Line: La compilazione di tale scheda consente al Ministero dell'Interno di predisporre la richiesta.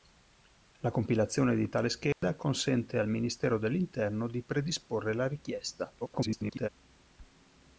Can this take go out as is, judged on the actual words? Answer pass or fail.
fail